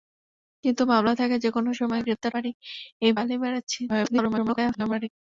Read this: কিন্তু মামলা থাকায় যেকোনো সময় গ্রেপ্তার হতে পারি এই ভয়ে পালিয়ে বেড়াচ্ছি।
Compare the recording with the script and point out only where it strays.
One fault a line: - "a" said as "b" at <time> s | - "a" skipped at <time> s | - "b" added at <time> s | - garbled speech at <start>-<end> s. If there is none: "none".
- "হতে" skipped at 2.3 s
- "ভয়ে" skipped at 3.1 s
- garbled speech at 3.9-5.1 s